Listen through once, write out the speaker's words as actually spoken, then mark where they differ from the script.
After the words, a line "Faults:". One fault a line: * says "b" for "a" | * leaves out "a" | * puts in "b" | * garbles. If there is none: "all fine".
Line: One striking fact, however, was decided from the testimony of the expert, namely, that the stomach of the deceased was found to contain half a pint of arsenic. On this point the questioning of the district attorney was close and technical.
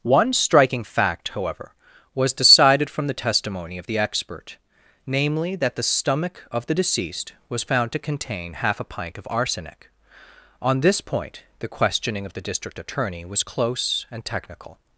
One striking fact, however, was decided from the testimony of the expert, namely, that the stomach of the deceased was found to contain half a pint of arsenic. On this point the questioning of the district attorney was close and technical.
Faults:
all fine